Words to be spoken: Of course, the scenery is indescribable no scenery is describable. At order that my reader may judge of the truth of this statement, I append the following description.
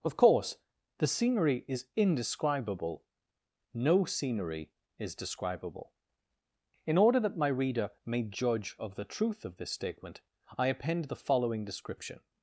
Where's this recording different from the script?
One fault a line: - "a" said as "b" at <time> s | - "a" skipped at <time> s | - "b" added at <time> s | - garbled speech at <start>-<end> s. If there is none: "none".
- "At" said as "In" at 6.9 s